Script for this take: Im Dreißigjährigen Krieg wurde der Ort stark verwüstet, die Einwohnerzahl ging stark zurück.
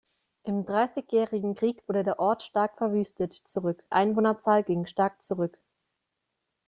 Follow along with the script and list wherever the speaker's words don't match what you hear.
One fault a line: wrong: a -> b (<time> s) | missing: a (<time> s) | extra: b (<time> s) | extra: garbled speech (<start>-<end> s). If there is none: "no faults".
wrong: die -> zurück (3.5 s)